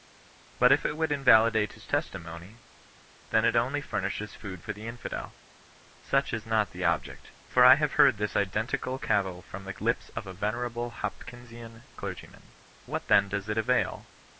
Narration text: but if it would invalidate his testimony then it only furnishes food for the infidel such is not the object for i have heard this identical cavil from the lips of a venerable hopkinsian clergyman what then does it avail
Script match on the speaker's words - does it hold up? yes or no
yes